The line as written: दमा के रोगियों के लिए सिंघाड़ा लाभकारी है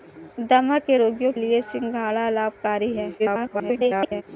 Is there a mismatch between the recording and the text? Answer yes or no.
yes